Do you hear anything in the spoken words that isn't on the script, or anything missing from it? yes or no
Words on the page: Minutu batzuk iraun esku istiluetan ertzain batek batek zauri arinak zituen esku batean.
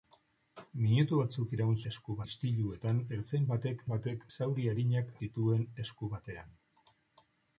no